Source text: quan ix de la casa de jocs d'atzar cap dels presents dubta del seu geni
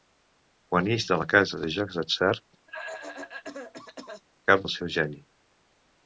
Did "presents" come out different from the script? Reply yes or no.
yes